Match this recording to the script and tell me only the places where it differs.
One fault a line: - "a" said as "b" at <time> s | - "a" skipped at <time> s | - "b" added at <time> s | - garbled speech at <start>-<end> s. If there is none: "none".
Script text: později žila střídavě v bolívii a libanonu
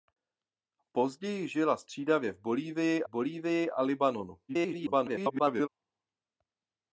- "bolívii" added at 3.1 s
- garbled speech at 4.5-5.7 s